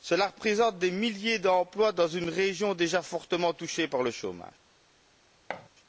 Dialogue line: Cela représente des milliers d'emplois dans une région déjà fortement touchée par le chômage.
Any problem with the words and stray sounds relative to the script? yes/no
yes